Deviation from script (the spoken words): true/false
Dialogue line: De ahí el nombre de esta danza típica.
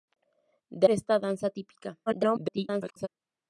true